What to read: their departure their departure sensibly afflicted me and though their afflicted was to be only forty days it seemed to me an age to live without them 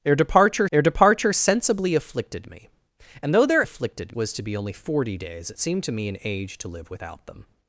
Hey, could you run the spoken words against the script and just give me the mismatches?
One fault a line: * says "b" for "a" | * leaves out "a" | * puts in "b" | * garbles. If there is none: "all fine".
all fine